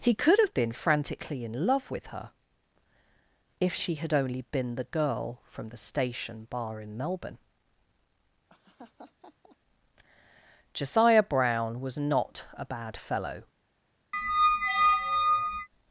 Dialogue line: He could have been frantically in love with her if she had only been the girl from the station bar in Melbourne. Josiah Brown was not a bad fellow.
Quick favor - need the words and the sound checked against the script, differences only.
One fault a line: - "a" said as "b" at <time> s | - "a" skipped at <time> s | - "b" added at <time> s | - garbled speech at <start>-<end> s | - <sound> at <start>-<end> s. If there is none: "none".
- laugh at 8.5-9.6 s
- squeak at 14.1-15.7 s